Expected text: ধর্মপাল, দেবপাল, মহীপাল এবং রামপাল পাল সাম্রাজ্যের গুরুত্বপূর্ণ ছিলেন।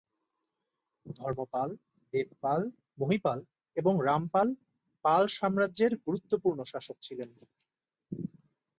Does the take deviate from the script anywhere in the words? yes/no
yes